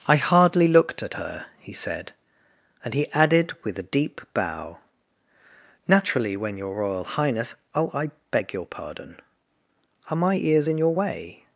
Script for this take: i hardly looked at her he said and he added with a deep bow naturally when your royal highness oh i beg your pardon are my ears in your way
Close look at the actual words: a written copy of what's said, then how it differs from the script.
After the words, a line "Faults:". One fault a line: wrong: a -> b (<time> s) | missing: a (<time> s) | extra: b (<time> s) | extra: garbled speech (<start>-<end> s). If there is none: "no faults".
i hardly looked at her he said and he added with a deep bow naturally when your royal highness oh i beg your pardon are my ears in your way
Faults:
no faults